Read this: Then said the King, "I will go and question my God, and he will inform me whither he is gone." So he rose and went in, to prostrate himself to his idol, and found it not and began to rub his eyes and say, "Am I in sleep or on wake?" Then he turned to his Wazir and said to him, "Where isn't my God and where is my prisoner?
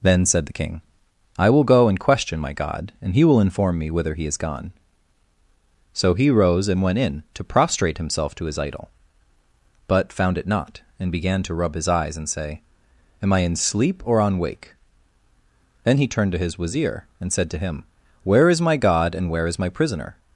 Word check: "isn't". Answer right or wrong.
wrong